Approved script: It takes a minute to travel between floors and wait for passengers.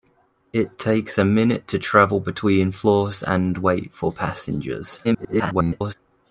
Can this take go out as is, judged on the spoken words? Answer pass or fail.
fail